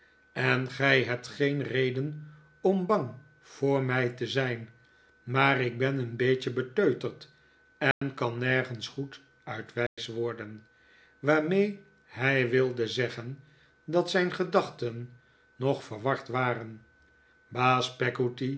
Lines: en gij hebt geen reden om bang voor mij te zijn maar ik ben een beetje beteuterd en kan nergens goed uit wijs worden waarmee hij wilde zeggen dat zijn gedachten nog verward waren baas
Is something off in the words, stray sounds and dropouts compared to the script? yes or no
yes